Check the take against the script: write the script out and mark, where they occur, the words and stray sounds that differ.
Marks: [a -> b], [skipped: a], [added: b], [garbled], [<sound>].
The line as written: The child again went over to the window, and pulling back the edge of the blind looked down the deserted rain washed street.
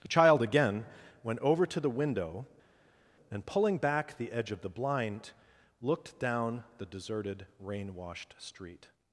The child again went over to the window, and pulling back the edge of the blind looked down the deserted rain washed street.